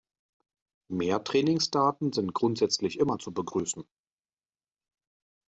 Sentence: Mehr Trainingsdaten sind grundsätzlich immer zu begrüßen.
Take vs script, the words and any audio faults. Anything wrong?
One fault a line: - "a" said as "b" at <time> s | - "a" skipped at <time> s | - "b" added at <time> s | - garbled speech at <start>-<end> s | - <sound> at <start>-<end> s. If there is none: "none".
none